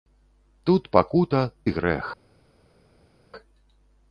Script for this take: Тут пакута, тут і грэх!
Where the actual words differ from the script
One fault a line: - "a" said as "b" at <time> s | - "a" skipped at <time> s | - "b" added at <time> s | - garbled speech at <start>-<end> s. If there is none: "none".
- "тут" skipped at 1.4 s